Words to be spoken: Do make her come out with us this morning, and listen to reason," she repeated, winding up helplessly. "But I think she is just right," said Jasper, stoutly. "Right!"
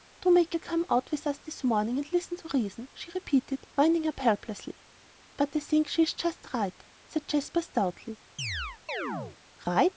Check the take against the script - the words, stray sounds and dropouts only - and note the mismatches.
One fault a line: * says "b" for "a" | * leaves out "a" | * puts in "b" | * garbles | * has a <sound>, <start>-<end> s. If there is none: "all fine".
* has a chirp, 8.4-9.4 s